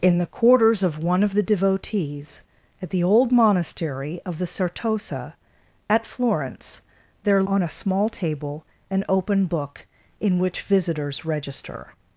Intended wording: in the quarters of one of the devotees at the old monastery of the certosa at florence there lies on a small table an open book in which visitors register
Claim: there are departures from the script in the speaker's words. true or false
true